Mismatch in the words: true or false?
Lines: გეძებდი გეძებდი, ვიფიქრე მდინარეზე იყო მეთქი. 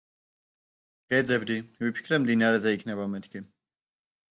true